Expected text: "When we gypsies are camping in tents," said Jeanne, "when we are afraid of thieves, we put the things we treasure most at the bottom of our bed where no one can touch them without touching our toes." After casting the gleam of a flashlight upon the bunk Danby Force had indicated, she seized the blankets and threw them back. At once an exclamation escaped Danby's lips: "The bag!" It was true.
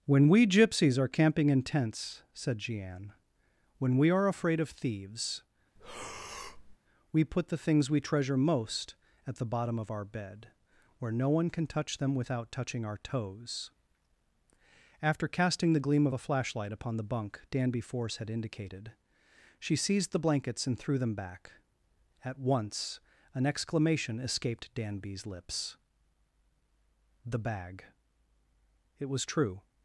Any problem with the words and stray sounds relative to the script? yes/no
yes